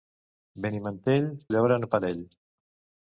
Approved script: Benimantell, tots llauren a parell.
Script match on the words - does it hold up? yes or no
no